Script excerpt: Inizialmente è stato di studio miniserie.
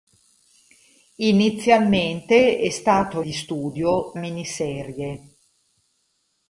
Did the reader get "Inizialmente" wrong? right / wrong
right